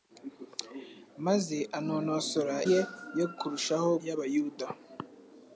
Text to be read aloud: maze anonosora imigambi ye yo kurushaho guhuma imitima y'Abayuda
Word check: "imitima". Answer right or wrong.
wrong